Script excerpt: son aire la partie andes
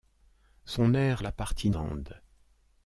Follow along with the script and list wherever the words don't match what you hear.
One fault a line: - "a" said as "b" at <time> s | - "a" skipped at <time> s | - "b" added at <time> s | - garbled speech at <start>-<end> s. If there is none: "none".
none